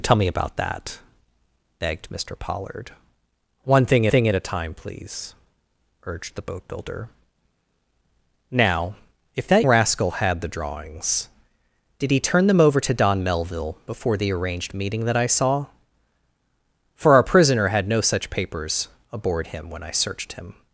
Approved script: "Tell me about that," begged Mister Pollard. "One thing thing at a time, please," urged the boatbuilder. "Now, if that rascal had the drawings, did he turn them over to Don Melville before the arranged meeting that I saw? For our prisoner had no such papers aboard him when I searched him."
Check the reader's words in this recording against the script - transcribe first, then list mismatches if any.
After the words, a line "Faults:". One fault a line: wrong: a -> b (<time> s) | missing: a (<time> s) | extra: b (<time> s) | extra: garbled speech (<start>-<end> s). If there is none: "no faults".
"Tell me about that," begged Mister Pollard. "One thing thing at a time, please," urged the boatbuilder. "Now, if that rascal had the drawings, did he turn them over to Don Melville before the arranged meeting that I saw? For our prisoner had no such papers aboard him when I searched him."
Faults:
no faults